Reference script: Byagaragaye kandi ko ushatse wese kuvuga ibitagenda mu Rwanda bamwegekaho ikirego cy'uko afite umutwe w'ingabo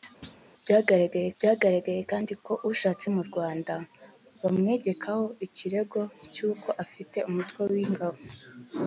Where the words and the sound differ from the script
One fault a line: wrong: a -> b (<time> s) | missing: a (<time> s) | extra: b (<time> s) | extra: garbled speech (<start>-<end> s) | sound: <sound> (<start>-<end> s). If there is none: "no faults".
sound: thud (0.2-0.5 s)
extra: byagaragaye (1.4 s)
missing: wese kuvuga ibitagenda (3.1 s)